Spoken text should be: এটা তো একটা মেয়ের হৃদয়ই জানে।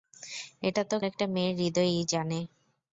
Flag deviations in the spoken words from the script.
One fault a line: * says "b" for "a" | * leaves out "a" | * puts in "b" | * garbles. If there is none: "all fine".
all fine